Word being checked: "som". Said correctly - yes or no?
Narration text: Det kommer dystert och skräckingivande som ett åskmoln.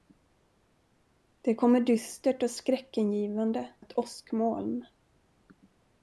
no